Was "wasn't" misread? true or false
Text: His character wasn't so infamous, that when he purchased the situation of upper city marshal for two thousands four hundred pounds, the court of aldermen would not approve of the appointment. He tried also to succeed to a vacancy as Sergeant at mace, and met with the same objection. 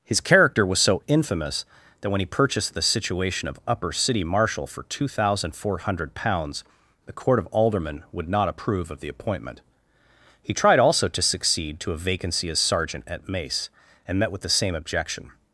true